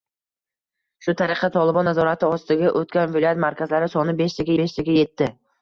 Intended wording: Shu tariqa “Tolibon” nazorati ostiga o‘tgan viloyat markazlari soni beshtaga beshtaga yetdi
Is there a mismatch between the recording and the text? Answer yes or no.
no